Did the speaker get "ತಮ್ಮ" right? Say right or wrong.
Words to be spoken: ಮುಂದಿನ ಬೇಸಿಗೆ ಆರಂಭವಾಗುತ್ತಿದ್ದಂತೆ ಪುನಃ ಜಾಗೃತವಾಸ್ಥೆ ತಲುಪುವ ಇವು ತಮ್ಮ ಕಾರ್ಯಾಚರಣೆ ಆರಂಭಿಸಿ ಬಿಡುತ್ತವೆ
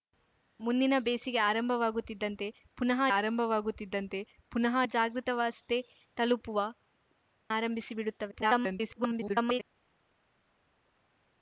wrong